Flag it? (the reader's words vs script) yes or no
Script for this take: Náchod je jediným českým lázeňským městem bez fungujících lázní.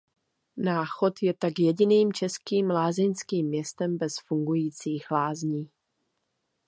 yes